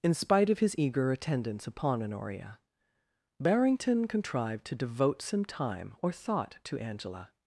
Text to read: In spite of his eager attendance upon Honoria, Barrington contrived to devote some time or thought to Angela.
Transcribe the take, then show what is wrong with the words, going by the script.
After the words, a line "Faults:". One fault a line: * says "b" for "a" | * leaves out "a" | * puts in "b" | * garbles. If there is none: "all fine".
In spite of his eager attendance upon Honoria, Barrington contrived to devote some time or thought to Angela.
Faults:
all fine